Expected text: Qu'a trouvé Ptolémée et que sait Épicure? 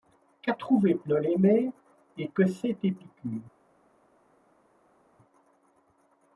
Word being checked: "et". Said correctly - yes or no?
yes